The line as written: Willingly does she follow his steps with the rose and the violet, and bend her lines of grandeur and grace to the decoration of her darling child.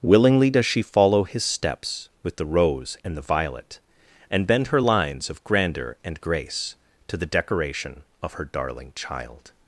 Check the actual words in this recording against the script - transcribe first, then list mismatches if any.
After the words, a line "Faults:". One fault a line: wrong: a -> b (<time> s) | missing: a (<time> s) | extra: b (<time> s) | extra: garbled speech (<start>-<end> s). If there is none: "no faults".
Willingly does she follow his steps with the rose and the violet, and bend her lines of grandeur and grace to the decoration of her darling child.
Faults:
no faults